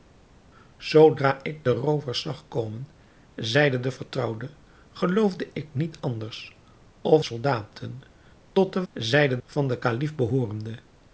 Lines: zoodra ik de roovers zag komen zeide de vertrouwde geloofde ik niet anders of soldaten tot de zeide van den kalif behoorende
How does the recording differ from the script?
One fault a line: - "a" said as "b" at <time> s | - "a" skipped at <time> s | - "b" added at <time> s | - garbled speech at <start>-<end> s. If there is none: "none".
none